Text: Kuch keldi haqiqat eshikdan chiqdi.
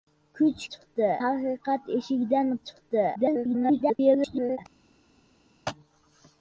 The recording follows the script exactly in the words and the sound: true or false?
false